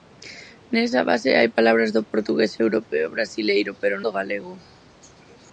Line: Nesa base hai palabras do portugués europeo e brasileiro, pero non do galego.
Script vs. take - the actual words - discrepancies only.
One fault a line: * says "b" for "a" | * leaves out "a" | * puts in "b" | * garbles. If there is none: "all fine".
* leaves out "non"